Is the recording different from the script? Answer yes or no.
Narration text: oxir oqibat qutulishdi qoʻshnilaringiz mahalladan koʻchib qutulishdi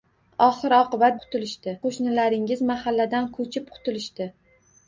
no